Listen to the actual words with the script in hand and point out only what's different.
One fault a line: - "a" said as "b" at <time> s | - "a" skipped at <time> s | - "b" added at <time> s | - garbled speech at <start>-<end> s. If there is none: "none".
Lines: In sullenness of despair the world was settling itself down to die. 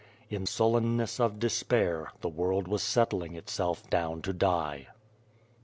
none